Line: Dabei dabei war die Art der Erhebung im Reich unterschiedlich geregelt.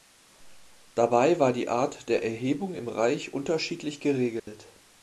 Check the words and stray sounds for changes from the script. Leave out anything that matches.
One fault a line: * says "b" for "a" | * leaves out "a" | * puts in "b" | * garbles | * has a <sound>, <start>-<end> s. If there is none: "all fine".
* leaves out "dabei"
* has a dropout, 4.4-4.5 s